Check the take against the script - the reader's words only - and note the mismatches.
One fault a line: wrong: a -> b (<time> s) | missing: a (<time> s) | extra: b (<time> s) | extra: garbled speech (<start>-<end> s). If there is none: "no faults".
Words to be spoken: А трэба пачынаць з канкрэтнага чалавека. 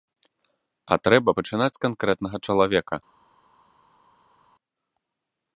no faults